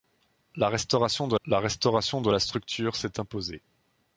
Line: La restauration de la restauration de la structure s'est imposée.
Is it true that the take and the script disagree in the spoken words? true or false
false